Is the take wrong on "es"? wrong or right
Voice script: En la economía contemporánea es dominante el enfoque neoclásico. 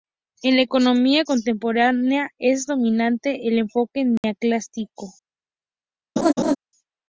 right